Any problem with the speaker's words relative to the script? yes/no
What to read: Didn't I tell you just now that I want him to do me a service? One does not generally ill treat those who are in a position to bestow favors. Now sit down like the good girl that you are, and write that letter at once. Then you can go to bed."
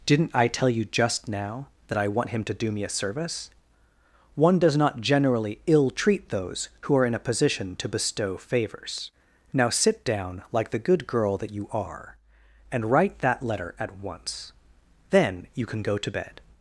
no